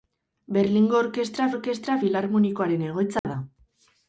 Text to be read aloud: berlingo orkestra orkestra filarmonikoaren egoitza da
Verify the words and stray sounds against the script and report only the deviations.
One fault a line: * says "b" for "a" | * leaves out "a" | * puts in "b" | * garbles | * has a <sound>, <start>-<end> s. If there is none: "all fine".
* has a dropout, 3.2-3.2 s